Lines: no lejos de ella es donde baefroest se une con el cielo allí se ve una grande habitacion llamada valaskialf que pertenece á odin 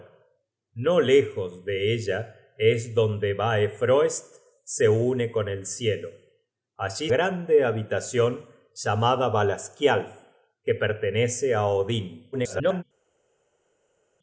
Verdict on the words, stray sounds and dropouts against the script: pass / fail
fail